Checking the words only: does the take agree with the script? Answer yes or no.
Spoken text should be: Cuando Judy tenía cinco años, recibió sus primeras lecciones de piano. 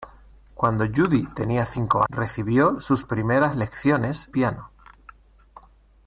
no